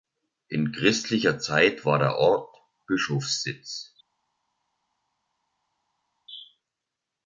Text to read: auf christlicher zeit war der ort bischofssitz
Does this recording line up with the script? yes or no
no